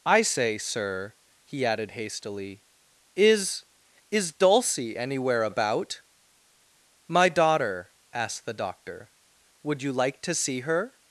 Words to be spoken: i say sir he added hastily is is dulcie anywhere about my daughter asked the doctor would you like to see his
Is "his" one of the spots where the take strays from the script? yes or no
yes